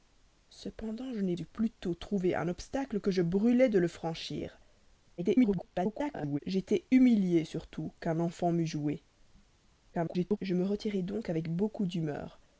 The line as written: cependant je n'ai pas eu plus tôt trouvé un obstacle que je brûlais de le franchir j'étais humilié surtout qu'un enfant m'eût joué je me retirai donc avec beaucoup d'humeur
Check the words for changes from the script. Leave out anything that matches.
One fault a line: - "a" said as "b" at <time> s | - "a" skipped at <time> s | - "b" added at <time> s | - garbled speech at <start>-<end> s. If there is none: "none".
- "pas" skipped at 1.4 s
- garbled speech at 5.2-6.4 s
- garbled speech at 9.9-10.4 s